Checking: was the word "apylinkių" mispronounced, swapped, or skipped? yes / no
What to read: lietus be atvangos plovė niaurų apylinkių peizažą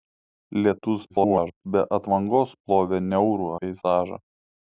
yes